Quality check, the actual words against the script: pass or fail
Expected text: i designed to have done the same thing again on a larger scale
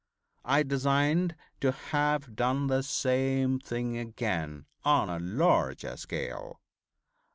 pass